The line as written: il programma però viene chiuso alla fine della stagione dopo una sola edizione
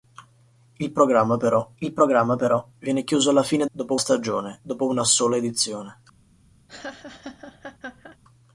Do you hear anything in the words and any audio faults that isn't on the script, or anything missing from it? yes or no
yes